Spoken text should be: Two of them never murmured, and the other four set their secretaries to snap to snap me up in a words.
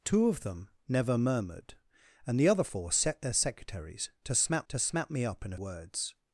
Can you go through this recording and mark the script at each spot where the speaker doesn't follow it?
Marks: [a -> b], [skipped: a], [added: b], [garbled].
Two of them never murmured, and the other four set their secretaries to snap to snap me up in a words.